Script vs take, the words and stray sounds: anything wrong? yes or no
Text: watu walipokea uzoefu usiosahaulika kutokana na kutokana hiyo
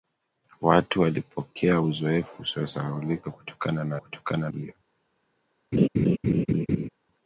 yes